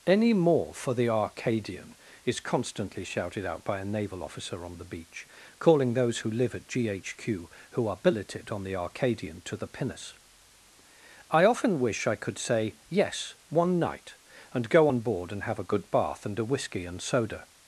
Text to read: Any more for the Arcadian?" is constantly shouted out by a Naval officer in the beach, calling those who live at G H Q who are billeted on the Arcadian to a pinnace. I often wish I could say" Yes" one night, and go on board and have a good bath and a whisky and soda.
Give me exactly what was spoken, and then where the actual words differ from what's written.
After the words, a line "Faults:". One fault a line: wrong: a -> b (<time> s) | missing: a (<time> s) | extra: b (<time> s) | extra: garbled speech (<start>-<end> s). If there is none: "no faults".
Any more for the Arcadian?" is constantly shouted out by a Naval officer on the beach, calling those who live at G H Q who are billeted on the Arcadian to the pinnace. I often wish I could say" Yes" one night, and go on board and have a good bath and a whisky and soda.
Faults:
wrong: in -> on (4.7 s)
wrong: a -> the (9.6 s)